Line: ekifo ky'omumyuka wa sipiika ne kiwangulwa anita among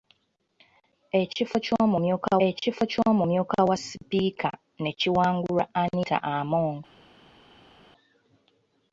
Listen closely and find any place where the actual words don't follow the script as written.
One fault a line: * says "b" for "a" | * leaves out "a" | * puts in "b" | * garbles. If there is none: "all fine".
* puts in "ekifo ky'omumyuka"